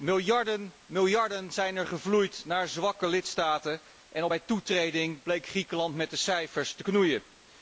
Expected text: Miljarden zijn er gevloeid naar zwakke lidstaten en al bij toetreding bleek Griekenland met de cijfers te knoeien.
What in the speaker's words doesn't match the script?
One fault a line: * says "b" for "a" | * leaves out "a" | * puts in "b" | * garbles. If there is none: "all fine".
all fine